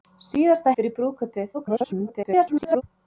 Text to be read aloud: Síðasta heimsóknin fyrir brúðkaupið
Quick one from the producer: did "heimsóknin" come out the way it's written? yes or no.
no